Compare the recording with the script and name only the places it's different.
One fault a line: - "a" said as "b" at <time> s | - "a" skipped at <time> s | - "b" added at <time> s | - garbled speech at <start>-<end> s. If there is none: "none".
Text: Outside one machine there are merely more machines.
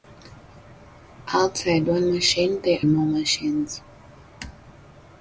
- "are merely" skipped at 2.8 s